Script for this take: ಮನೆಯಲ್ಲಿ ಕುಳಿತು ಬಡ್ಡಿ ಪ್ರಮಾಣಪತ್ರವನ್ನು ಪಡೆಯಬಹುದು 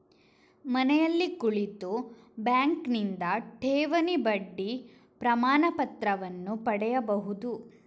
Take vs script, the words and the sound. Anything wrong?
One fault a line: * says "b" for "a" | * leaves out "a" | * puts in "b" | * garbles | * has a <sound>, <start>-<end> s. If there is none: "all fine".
* puts in "ಬ್ಯಾಂಕಿನಿಂದ ಠೇವಣಿ"